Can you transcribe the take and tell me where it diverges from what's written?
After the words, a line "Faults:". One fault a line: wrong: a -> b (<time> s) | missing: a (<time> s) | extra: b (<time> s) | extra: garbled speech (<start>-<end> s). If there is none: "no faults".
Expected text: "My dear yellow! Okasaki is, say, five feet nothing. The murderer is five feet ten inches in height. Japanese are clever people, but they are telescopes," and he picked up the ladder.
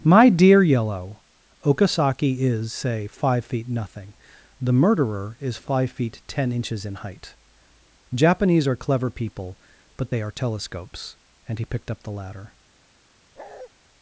"My dear yellow! Okasaki is, say, five feet nothing. The murderer is five feet ten inches in height. Japanese are clever people, but they are telescopes," and he picked up the ladder.
Faults:
no faults